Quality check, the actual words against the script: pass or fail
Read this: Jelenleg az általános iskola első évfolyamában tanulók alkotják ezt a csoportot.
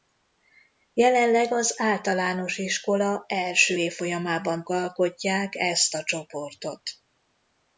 fail